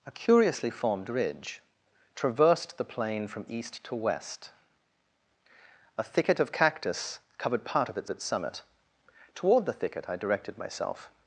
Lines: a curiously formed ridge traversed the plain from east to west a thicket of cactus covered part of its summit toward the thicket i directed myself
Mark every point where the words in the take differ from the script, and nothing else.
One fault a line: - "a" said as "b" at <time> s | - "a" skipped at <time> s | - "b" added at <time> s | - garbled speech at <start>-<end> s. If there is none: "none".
- "its" added at 8.1 s